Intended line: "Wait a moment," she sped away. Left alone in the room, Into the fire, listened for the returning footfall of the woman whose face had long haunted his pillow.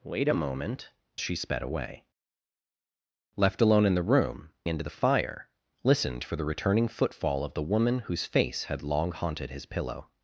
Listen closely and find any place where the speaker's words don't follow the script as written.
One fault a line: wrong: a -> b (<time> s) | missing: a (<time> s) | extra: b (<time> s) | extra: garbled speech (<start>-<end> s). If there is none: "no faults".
no faults